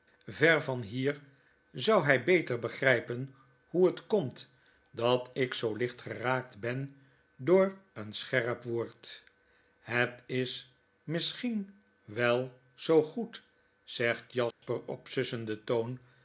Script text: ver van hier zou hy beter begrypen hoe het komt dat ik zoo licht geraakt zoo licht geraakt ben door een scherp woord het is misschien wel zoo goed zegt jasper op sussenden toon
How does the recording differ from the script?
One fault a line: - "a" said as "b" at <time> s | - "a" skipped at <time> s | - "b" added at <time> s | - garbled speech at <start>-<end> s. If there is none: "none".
- "zoo licht geraakt" skipped at 6.6 s